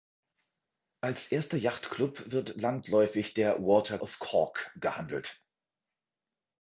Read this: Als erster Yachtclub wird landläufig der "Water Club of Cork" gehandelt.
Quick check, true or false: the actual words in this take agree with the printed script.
false